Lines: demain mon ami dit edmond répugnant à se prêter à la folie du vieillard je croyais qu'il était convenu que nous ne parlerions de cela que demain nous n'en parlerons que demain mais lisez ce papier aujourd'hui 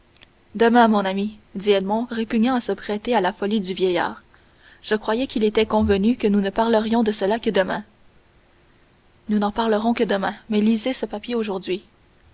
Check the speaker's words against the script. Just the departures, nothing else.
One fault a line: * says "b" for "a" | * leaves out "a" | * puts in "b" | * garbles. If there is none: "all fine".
all fine